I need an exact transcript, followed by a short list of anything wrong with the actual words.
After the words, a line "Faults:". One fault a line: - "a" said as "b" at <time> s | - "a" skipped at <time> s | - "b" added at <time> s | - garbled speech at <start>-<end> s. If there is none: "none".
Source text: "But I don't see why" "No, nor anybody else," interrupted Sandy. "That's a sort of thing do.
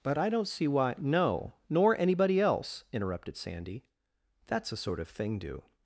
"But I don't see why" "No, nor anybody else," interrupted Sandy. "That's a sort of thing do.
Faults:
none